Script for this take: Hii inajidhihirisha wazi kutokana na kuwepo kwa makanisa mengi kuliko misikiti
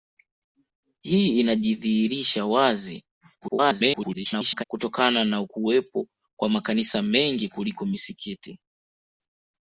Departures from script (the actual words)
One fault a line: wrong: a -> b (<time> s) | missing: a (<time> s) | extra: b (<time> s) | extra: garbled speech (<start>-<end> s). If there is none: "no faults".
extra: garbled speech (3.4-4.6 s)